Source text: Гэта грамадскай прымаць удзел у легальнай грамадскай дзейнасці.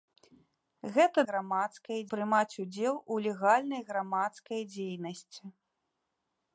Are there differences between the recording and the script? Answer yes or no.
no